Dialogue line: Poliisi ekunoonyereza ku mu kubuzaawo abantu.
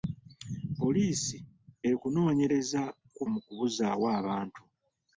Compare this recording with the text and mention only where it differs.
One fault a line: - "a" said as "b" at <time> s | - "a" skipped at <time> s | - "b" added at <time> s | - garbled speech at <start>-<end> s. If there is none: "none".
none